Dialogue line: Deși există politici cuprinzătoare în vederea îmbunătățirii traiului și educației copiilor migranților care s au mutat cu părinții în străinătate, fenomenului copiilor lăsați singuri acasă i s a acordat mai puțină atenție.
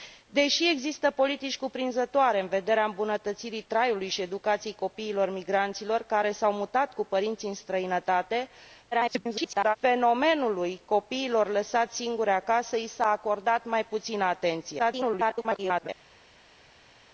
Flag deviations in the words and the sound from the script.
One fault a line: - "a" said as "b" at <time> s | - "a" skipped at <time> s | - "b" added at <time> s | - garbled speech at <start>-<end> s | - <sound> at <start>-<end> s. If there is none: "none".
- garbled speech at 8.9-9.8 s
- garbled speech at 14.8-15.9 s